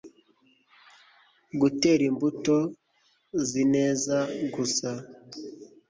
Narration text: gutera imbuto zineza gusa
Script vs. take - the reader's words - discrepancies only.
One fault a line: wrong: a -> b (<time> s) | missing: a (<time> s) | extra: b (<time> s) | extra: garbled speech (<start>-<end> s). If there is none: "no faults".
no faults